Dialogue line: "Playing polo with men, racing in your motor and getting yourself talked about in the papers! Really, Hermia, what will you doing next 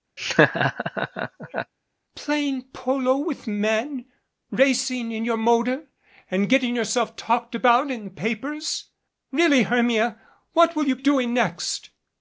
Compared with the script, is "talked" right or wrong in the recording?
right